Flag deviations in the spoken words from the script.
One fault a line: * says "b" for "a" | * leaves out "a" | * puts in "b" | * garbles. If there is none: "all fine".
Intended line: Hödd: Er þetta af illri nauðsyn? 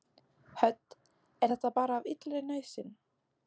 * puts in "bara"